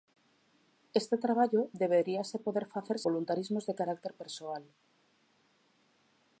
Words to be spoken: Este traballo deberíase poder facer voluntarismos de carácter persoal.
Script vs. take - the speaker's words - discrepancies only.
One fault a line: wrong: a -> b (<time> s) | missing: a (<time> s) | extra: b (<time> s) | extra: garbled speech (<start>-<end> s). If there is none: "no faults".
no faults